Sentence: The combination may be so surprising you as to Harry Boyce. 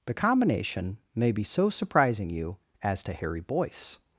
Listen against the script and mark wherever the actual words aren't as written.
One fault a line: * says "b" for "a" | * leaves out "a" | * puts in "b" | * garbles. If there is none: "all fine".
all fine